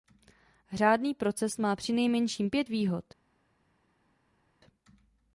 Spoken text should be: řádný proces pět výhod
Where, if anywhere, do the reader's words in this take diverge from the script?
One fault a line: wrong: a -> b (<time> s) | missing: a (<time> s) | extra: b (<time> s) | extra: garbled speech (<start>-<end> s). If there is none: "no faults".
extra: má přinejmenším (1.6 s)